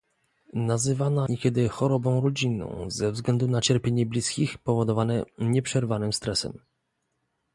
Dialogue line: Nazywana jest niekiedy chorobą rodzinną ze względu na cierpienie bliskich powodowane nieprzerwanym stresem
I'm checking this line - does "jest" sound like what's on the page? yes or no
no